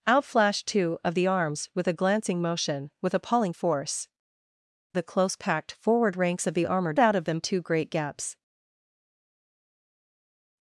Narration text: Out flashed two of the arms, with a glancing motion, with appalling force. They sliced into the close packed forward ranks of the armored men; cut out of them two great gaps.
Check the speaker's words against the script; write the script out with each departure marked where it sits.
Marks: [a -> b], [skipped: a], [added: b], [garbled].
Out flashed two of the arms, with a glancing motion, with appalling force. [skipped: They sliced into] the close packed forward ranks of the armored [skipped: men; cut] out of them two great gaps.